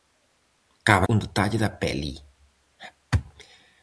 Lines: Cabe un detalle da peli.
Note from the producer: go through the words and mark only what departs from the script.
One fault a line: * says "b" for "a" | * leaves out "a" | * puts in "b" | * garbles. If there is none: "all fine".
all fine